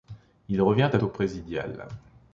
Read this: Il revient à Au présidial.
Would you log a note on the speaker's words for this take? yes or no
no